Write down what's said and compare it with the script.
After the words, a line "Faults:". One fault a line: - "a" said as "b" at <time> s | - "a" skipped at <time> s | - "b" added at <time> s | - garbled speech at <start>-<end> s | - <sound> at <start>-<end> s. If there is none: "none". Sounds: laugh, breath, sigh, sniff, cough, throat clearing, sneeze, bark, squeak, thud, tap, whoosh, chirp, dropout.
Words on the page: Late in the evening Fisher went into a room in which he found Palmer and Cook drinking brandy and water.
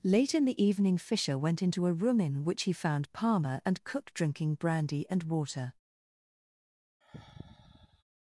Late in the evening Fisher went into a room in which he found Palmer and Cook drinking brandy and water.
Faults:
- sigh at 7.0-8.0 s